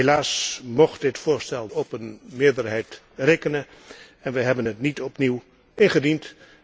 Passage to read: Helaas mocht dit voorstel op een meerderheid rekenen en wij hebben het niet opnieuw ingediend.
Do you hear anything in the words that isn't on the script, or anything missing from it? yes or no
no